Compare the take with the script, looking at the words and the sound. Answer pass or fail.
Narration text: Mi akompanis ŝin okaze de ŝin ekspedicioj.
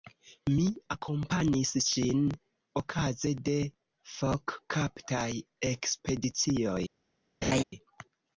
fail